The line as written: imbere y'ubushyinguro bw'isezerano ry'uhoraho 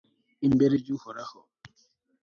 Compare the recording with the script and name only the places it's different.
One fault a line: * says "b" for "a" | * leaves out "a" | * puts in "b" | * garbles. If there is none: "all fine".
* leaves out "y'ubushyinguro bw'isezerano"